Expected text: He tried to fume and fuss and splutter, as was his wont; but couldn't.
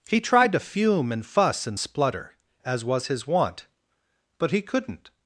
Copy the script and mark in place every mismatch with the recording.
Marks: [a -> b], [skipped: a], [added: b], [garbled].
He tried to fume and fuss and splutter, as was his wont; but [added: he] couldn't.